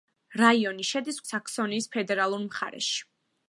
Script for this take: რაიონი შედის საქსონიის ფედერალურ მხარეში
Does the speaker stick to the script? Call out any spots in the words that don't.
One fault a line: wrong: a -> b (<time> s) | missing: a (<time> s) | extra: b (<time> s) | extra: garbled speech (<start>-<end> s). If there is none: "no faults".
no faults